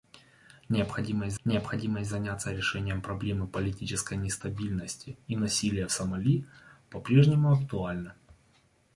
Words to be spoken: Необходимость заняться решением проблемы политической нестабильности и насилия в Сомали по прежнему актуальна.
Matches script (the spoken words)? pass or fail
fail